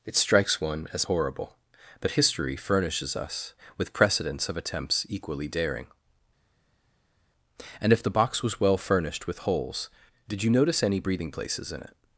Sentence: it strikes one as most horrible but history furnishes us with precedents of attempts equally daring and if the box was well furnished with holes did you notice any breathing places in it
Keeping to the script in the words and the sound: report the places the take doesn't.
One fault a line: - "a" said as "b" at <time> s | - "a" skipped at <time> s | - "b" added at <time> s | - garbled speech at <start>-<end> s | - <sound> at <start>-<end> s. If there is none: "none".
- "most" skipped at 1.1 s